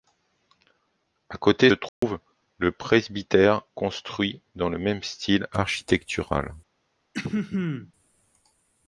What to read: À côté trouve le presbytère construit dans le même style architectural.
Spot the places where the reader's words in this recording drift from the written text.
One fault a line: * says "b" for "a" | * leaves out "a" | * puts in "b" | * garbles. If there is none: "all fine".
all fine